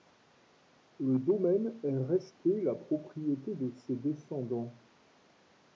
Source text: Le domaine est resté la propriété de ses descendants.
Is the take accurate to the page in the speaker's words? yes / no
yes